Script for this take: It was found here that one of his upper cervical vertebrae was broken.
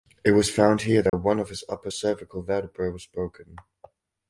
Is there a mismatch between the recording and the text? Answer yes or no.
no